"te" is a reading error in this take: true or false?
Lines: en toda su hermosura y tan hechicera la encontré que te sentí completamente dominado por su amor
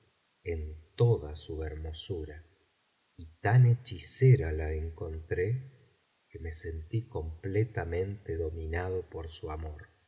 true